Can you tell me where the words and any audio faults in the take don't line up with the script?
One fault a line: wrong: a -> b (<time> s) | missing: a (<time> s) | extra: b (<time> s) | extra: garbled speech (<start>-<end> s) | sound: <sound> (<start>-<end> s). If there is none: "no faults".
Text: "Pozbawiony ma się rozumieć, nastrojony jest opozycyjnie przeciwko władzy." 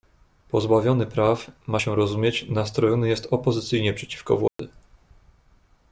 extra: praw (1.1 s)
sound: dropout (4.5-4.6 s)